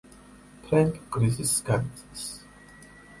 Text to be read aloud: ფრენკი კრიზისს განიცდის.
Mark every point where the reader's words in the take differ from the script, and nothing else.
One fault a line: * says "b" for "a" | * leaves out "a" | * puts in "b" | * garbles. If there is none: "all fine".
all fine